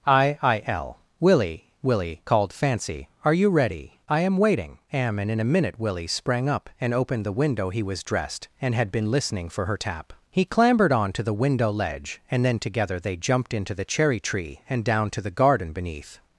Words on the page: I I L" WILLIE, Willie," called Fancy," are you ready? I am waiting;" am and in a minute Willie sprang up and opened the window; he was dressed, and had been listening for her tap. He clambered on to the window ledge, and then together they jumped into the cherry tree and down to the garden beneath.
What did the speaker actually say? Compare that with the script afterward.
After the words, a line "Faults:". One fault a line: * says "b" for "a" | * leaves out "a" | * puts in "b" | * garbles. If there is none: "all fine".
I I L" WILLIE, Willie," called Fancy," are you ready? I am waiting;" am and in a minute Willie sprang up and opened the window; he was dressed, and had been listening for her tap. He clambered on to the window ledge, and then together they jumped into the cherry tree and down to the garden beneath.
Faults:
all fine